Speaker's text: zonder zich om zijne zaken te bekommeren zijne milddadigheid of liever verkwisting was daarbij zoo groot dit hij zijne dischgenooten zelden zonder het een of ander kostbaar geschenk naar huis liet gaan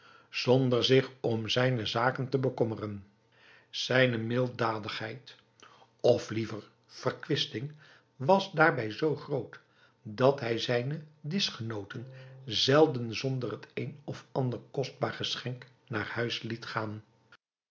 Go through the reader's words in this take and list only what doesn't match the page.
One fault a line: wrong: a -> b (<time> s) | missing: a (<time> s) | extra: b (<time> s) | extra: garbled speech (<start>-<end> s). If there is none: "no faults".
wrong: dit -> dat (10.0 s)